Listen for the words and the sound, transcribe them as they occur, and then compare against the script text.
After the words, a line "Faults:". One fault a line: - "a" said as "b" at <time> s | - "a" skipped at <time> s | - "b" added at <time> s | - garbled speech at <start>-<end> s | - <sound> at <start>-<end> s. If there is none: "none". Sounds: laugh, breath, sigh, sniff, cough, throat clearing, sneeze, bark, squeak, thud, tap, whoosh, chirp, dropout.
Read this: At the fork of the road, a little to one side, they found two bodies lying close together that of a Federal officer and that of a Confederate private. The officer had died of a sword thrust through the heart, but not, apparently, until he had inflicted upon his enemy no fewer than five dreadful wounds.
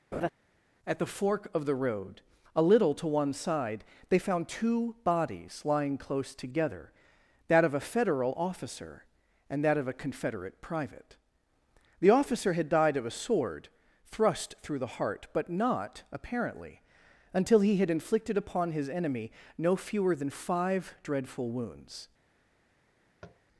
At the fork of the road, a little to one side, they found two bodies lying close together that of a Federal officer and that of a Confederate private. The officer had died of a sword thrust through the heart, but not, apparently, until he had inflicted upon his enemy no fewer than five dreadful wounds.
Faults:
- laugh at 0.1-0.3 s
- tap at 23.2-23.4 s